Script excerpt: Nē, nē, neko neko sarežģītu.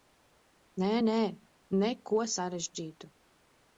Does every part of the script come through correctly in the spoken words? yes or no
no